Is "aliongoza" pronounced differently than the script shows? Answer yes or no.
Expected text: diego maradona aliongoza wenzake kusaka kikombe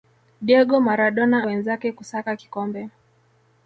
yes